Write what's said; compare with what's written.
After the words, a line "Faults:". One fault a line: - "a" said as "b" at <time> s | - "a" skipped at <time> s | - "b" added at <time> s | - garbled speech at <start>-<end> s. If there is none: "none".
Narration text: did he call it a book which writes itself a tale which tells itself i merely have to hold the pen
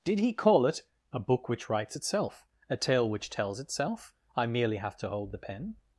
did he call it a book which writes itself a tale which tells itself i merely have to hold the pen
Faults:
none